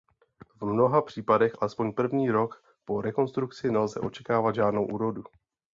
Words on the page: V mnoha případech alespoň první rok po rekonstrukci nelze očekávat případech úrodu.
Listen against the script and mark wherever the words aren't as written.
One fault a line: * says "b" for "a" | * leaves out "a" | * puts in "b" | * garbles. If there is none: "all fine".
* says "žádnou" for "případech"